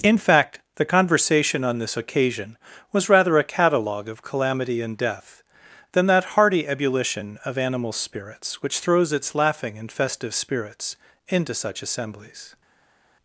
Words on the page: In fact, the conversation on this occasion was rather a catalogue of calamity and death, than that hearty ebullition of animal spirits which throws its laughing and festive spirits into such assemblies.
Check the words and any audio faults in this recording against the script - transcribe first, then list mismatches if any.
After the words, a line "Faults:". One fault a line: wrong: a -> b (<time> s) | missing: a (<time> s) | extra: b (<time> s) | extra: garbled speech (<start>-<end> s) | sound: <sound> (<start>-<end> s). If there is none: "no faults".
In fact, the conversation on this occasion was rather a catalogue of calamity and death, than that hearty ebullition of animal spirits which throws its laughing and festive spirits into such assemblies.
Faults:
no faults